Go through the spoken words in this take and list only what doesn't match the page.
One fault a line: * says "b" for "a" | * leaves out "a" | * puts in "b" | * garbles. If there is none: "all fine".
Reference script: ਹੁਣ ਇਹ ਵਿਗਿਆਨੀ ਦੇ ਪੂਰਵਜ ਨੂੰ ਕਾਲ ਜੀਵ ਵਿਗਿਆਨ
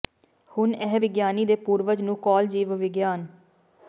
all fine